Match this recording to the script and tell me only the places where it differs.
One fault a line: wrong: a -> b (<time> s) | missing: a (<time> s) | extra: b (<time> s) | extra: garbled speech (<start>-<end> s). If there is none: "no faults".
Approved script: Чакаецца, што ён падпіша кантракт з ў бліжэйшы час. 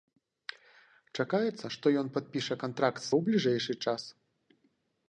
no faults